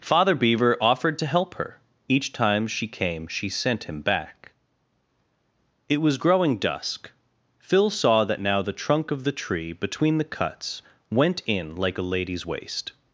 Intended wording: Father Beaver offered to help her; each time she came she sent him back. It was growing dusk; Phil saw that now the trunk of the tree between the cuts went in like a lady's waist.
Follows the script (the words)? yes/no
yes